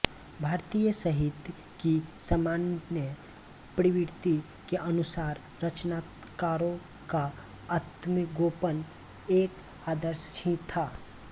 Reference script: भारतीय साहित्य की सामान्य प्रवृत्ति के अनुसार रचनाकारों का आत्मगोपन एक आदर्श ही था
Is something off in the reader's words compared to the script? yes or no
no